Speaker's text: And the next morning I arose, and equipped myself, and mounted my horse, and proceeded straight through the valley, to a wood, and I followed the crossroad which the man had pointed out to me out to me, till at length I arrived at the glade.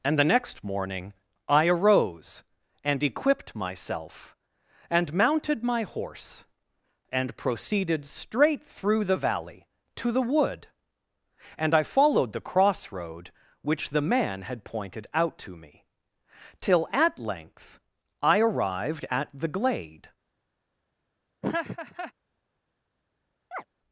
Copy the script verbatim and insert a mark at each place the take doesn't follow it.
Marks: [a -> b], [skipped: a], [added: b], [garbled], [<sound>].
And the next morning I arose, and equipped myself, and mounted my horse, and proceeded straight through the valley, to [a -> the] wood, and I followed the crossroad which the man had pointed out to me [skipped: out to me,] till at length I arrived at the glade. [laugh] [chirp]